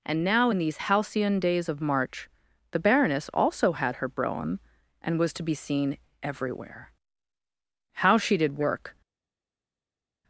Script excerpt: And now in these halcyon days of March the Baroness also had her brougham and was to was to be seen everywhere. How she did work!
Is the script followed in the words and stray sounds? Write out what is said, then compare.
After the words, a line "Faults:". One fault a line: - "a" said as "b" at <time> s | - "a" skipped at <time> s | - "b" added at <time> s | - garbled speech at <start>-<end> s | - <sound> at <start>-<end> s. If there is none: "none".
And now in these halcyon days of March the Baroness also had her brougham and was to be seen everywhere. How she did work!
Faults:
- "was to" skipped at 5.4 s